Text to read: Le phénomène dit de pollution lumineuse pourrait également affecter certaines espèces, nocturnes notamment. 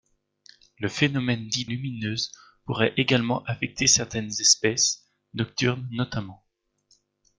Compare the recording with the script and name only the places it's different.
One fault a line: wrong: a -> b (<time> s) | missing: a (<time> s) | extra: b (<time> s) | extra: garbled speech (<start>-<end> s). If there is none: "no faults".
missing: de pollution (1.6 s)